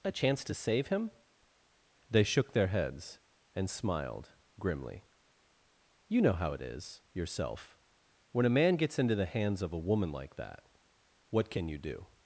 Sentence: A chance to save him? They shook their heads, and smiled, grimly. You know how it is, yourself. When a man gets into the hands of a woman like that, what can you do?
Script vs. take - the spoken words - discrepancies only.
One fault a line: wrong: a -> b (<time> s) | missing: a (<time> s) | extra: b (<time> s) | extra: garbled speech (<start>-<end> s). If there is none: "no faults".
no faults